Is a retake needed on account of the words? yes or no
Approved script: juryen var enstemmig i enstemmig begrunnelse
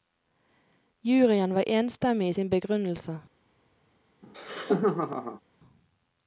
yes